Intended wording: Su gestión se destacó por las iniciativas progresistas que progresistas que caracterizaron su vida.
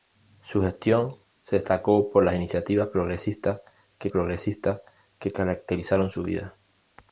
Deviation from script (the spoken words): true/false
false